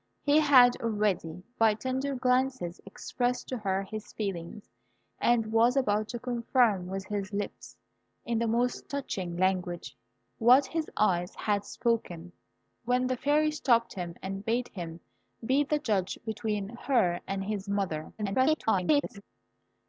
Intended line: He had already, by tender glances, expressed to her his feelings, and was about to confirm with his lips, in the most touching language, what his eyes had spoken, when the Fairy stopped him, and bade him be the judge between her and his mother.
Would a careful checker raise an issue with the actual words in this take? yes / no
yes